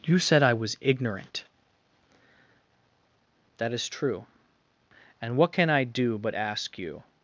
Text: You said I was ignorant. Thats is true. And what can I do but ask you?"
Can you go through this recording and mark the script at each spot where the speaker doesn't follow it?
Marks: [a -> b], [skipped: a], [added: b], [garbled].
You said I was ignorant. [Thats -> That] is true. And what can I do but ask you?"